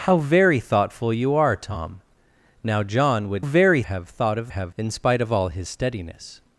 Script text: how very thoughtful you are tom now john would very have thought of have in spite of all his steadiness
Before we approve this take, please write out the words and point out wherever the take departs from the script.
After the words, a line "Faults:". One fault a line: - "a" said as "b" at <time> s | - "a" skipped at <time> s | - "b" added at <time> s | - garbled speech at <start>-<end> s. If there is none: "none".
how very thoughtful you are tom now john would very have thought of have in spite of all his steadiness
Faults:
none